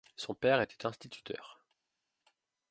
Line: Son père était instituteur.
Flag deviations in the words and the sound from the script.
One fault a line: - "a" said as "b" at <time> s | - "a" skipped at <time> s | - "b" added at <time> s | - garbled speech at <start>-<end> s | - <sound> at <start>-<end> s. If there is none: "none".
none